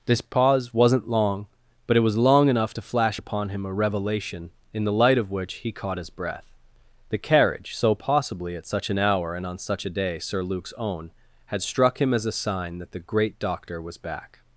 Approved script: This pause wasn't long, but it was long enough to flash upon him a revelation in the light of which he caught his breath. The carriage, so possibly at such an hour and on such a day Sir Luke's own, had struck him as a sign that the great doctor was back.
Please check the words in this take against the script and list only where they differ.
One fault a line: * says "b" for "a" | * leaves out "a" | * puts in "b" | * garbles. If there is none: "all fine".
all fine